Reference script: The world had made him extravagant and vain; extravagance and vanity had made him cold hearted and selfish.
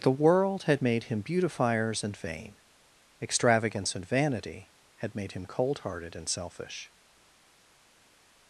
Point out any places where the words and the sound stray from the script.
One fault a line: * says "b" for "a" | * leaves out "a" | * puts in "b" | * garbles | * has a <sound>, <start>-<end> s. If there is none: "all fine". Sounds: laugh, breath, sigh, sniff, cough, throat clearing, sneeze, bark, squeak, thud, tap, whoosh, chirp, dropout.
* says "beautifiers" for "extravagant"